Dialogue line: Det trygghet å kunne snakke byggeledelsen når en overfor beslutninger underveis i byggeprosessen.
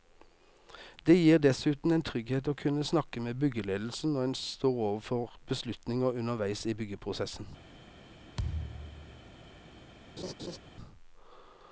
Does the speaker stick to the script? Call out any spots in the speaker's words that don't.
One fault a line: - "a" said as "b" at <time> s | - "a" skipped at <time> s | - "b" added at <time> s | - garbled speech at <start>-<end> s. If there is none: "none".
- "gir dessuten en" added at 1.2 s
- "med" added at 3.2 s
- "står" added at 4.4 s